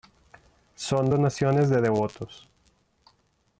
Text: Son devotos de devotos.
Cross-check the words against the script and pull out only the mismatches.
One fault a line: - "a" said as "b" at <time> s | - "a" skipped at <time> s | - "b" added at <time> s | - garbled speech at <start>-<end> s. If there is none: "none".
- "devotos" said as "donaciones" at 1.1 s